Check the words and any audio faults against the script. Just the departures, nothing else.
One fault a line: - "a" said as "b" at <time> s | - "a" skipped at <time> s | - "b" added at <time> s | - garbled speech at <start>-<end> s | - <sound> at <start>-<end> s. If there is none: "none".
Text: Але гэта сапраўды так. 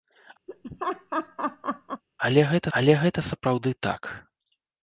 - laugh at 0.5-2.0 s
- "але гэта" added at 2.8 s